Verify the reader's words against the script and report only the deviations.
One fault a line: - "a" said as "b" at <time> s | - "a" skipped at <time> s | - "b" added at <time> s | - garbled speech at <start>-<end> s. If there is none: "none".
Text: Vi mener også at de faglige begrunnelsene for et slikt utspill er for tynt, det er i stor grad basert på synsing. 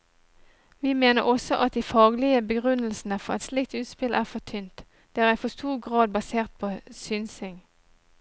- "for" added at 5.4 s